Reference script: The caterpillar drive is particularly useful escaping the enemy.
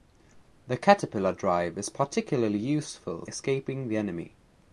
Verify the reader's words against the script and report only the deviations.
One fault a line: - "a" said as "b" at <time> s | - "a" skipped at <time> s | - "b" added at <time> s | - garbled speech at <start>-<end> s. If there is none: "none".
none